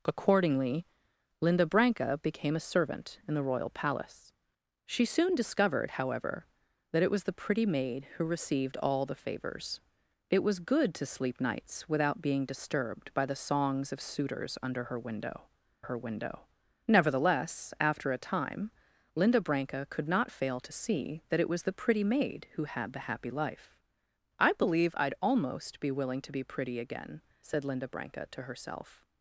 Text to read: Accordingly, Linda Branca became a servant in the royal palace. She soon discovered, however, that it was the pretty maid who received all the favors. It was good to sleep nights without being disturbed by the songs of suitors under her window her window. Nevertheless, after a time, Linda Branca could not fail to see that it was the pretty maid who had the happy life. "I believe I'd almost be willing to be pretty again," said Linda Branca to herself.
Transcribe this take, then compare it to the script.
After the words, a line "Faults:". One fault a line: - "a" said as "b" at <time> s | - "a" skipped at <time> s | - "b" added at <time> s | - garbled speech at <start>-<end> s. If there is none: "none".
Accordingly, Linda Branca became a servant in the royal palace. She soon discovered, however, that it was the pretty maid who received all the favors. It was good to sleep nights without being disturbed by the songs of suitors under her window her window. Nevertheless, after a time, Linda Branca could not fail to see that it was the pretty maid who had the happy life. "I believe I'd almost be willing to be pretty again," said Linda Branca to herself.
Faults:
none